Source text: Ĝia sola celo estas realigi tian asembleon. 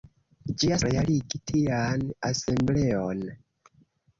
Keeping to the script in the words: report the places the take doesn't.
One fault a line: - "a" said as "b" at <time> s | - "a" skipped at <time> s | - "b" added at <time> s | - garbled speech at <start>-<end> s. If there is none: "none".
- "sola celo estas" skipped at 0.8 s